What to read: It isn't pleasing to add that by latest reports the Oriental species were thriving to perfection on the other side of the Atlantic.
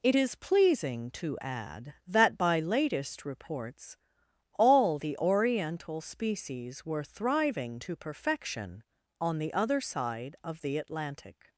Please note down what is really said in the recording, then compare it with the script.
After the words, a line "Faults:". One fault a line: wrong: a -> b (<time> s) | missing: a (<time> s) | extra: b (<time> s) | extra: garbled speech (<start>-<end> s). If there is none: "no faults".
It is pleasing to add that by latest reports all the Oriental species were thriving to perfection on the other side of the Atlantic.
Faults:
wrong: isn't -> is (0.1 s)
extra: all (4.5 s)